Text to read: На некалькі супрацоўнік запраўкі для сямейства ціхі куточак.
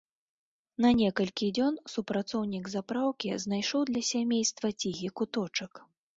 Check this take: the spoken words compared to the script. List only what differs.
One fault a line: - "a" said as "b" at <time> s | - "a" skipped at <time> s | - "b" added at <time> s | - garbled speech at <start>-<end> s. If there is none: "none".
- "дзён" added at 1.6 s
- "знайшоў" added at 3.5 s